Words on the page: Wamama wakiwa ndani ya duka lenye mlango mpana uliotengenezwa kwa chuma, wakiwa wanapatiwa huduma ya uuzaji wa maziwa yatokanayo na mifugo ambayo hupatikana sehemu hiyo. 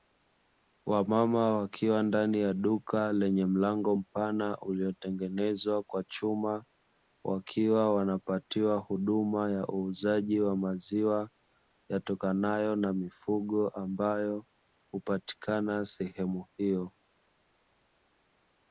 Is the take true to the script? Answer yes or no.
yes